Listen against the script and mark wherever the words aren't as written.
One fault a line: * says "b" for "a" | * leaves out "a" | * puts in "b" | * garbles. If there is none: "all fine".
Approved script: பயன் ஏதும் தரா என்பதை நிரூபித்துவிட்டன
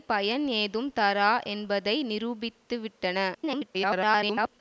* garbles